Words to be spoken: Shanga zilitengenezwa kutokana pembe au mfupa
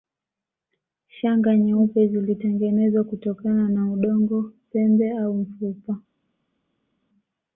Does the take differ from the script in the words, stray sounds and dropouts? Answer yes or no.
yes